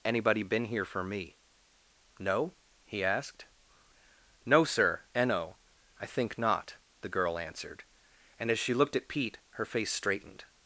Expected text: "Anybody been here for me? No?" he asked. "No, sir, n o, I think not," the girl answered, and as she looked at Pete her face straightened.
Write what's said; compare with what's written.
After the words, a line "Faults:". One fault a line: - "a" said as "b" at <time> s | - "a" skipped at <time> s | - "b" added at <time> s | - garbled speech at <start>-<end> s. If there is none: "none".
"Anybody been here for me? No?" he asked. "No, sir, n o, I think not," the girl answered, and as she looked at Pete her face straightened.
Faults:
none